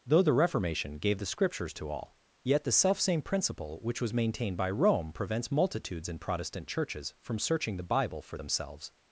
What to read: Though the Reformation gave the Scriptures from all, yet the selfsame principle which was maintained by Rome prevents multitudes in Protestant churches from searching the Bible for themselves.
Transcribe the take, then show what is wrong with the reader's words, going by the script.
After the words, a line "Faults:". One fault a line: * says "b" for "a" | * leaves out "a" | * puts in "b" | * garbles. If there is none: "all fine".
Though the Reformation gave the Scriptures to all, yet the selfsame principle which was maintained by Rome prevents multitudes in Protestant churches from searching the Bible for themselves.
Faults:
* says "to" for "from"